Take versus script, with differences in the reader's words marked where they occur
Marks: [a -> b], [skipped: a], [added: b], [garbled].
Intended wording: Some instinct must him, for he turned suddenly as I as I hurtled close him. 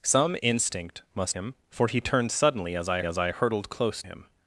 Some instinct must him, for he turned suddenly as I as I hurtled close him.